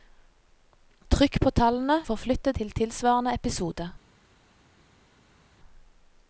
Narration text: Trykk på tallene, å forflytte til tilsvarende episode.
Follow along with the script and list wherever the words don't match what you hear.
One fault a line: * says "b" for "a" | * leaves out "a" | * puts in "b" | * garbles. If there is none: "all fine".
all fine